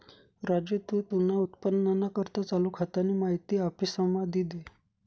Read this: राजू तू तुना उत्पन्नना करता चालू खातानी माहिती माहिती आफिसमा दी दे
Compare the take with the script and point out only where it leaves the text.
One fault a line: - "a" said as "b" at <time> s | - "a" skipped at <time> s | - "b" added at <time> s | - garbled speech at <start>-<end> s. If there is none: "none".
- "माहिती" skipped at 3.6 s